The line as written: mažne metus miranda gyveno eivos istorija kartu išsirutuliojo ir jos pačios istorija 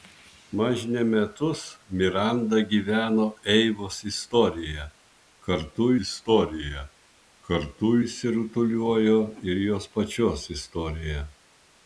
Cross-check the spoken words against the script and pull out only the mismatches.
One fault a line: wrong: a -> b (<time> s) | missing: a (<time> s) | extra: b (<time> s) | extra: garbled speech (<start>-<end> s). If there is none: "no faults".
extra: istorija kartu (6.1 s)